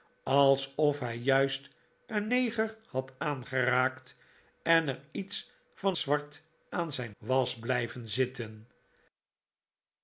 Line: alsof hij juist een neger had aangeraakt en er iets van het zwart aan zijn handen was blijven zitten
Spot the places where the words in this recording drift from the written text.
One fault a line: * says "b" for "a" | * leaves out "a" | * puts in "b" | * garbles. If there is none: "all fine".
* leaves out "het"
* leaves out "handen"